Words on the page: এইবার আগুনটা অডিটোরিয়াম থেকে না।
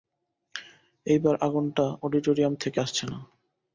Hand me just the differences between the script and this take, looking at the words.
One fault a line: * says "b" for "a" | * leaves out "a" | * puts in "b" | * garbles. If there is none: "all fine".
* puts in "আসছে"